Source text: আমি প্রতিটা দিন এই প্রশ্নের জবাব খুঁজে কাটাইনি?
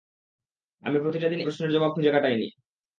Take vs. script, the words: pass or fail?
fail